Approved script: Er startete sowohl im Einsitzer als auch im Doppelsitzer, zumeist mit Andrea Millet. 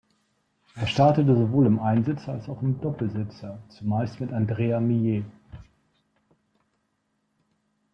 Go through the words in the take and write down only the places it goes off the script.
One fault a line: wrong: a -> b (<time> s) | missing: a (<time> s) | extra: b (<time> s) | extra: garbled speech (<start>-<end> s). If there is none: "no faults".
no faults